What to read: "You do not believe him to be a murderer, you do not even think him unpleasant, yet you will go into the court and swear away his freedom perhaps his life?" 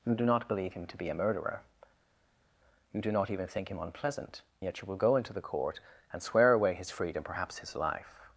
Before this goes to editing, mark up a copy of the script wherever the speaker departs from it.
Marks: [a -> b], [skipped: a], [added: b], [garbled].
"You do not believe him to be a murderer, you do not even think him unpleasant, yet you will go into the court and swear away his freedom perhaps his life?"